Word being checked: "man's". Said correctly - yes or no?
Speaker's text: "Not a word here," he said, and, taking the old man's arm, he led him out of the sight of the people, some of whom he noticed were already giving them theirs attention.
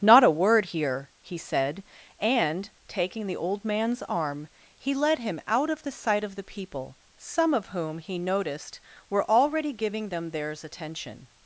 yes